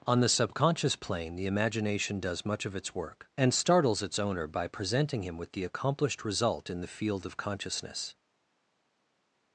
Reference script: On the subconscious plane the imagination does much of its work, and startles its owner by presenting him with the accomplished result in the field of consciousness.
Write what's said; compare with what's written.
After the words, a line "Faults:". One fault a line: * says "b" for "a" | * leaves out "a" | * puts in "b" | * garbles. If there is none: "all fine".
On the subconscious plane the imagination does much of its work, and startles its owner by presenting him with the accomplished result in the field of consciousness.
Faults:
all fine